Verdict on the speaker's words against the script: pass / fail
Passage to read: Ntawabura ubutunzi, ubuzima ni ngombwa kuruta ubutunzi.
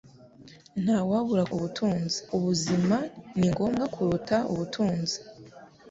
pass